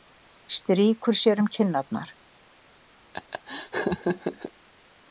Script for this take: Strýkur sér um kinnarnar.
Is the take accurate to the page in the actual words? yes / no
yes